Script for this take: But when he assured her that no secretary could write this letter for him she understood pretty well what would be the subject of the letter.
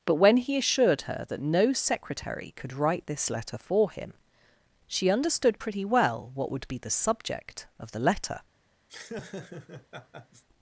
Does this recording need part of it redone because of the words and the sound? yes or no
yes